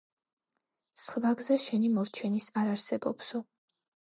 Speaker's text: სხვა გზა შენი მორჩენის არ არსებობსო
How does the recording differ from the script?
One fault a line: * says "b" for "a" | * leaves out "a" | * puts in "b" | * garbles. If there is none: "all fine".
all fine